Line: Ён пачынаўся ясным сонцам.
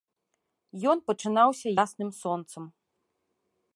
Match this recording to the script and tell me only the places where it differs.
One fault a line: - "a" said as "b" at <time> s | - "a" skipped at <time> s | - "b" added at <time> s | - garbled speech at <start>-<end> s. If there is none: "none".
none